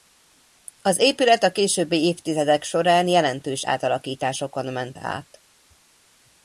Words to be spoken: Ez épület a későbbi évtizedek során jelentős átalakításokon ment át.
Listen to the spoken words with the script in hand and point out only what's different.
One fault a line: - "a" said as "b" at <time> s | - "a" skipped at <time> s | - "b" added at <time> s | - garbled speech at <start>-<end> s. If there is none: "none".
- "Ez" said as "Az" at 0.8 s